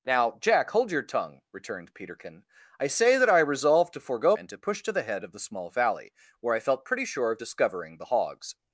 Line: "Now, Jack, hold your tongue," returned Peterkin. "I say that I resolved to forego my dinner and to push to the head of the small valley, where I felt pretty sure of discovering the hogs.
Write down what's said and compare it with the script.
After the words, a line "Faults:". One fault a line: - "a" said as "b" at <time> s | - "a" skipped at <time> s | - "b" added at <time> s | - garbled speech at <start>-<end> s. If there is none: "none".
"Now, Jack, hold your tongue," returned Peterkin. "I say that I resolved to forego and to push to the head of the small valley, where I felt pretty sure of discovering the hogs.
Faults:
- "my dinner" skipped at 4.3 s